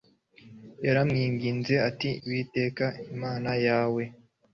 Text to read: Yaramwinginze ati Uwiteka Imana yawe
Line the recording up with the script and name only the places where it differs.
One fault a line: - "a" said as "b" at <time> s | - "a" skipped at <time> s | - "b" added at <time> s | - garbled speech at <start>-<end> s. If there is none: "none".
none